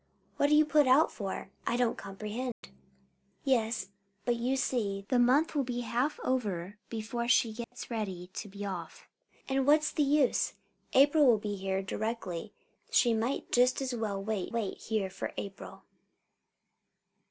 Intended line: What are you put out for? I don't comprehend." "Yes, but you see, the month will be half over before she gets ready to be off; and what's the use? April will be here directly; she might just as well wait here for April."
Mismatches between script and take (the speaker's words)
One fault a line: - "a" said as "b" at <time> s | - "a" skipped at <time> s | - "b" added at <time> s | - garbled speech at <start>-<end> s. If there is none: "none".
- "wait" added at 14.5 s